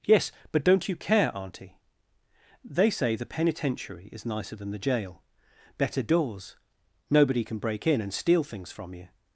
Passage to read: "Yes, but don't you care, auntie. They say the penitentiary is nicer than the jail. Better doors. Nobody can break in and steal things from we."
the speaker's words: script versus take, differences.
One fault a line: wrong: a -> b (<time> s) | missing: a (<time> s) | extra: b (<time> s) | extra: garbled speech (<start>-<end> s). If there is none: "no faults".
wrong: we -> you (8.9 s)